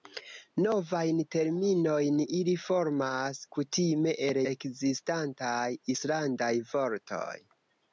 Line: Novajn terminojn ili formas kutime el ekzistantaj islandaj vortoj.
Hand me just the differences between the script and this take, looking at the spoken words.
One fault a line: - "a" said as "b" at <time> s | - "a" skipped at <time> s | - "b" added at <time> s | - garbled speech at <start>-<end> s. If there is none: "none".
none